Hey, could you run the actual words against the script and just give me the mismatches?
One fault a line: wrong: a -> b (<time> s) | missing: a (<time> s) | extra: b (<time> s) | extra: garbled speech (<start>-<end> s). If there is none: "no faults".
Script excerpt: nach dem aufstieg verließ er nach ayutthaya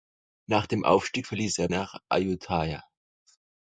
no faults